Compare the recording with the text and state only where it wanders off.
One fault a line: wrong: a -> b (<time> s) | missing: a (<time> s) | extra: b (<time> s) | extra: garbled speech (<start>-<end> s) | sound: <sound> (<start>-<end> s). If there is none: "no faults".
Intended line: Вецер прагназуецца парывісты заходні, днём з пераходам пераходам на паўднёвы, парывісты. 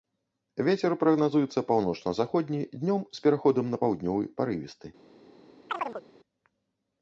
wrong: парывісты -> паўночна (1.7 s)
missing: пераходам (3.6 s)
sound: chirp (5.7-6.0 s)